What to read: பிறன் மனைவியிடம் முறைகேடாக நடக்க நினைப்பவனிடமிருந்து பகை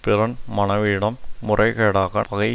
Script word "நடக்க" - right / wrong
wrong